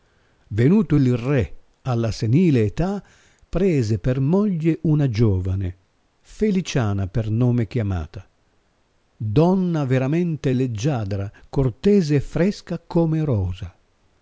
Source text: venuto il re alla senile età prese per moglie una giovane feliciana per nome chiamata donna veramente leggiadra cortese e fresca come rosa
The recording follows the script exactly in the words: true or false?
true